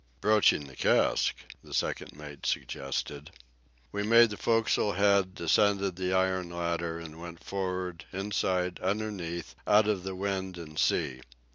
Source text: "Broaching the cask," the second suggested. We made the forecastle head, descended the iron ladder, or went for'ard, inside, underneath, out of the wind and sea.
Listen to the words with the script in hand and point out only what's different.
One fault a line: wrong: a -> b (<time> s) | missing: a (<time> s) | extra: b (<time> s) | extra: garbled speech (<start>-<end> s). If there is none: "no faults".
extra: mate (2.1 s)
wrong: or -> and (7.0 s)